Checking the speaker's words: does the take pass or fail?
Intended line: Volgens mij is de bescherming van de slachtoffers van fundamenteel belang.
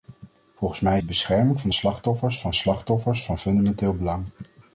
fail